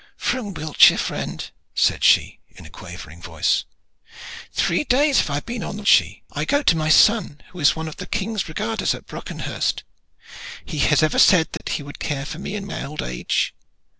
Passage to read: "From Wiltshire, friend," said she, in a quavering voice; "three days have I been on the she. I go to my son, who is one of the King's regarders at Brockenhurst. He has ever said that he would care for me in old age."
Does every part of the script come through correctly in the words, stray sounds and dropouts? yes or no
no